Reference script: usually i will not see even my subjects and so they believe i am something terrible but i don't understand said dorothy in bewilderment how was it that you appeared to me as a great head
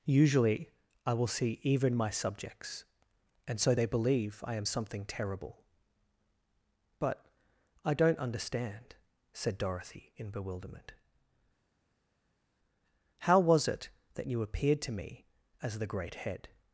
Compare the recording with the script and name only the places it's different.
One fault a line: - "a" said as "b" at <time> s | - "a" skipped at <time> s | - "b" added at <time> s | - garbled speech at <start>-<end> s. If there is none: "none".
- "not" skipped at 1.3 s
- "a" said as "the" at 15.8 s